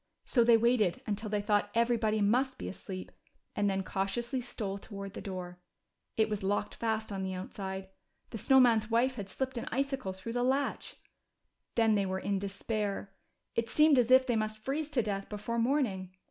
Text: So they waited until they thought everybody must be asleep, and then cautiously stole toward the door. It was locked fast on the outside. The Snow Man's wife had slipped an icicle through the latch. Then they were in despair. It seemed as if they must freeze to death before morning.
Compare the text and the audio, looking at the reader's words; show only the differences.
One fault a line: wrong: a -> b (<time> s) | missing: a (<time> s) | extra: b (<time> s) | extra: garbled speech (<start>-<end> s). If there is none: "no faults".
no faults